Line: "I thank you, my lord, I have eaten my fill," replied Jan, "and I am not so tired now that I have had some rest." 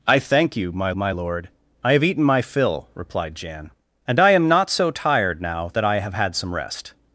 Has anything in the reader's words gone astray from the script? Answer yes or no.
yes